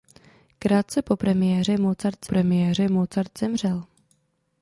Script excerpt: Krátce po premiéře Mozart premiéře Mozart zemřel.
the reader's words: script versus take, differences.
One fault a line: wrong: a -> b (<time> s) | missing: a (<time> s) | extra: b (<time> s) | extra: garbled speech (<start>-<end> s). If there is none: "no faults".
no faults